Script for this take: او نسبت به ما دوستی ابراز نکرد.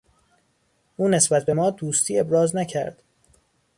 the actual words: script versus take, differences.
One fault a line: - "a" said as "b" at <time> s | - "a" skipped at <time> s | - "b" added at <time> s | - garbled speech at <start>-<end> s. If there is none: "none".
none